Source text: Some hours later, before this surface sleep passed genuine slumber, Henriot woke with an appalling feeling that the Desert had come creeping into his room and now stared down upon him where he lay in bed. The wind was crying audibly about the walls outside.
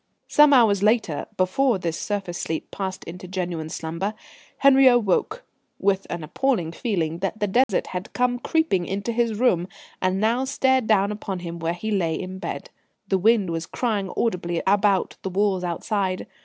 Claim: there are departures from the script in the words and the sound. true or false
true